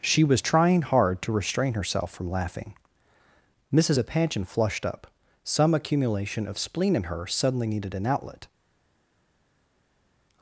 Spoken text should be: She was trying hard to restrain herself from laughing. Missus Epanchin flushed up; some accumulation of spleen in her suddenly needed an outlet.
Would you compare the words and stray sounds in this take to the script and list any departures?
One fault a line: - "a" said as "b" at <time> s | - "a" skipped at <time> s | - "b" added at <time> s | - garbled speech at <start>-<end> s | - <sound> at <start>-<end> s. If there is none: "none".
none